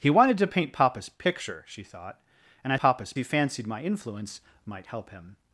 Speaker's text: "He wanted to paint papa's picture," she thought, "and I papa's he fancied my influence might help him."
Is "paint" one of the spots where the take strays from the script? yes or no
no